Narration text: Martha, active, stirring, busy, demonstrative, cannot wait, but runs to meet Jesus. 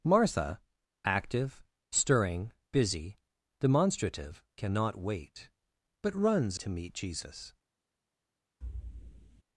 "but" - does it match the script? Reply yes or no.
yes